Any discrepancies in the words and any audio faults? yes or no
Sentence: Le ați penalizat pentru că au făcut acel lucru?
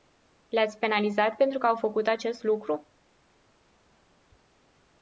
yes